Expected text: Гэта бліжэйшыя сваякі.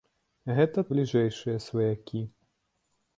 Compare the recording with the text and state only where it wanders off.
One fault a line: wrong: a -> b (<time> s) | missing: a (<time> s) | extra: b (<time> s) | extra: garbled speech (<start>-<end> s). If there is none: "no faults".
no faults